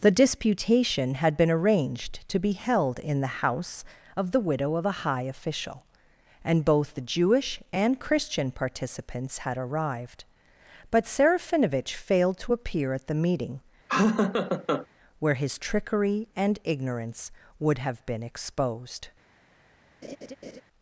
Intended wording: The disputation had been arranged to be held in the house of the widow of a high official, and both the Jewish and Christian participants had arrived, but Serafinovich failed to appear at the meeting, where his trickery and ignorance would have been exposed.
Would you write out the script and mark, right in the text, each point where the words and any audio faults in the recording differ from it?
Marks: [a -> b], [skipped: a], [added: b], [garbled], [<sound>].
The disputation had been arranged to be held in the house of the widow of a high official, and both the Jewish and Christian participants had arrived, but Serafinovich failed to appear at the meeting, [laugh] where his trickery and ignorance would have been exposed. [laugh]